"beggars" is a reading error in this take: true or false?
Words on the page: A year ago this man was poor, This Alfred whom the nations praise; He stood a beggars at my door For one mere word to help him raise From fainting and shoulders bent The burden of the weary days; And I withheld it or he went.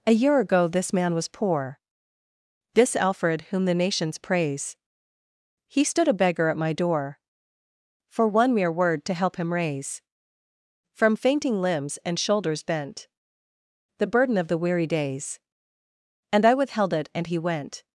true